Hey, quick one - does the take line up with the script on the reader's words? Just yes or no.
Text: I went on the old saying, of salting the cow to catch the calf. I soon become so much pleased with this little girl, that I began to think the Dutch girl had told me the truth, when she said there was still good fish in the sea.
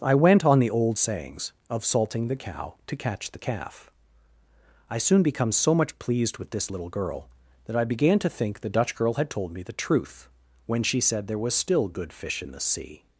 no